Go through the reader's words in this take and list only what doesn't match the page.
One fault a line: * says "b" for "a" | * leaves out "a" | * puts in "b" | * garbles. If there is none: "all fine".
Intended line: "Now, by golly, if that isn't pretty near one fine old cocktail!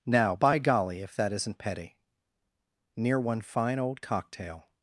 * says "petty" for "pretty"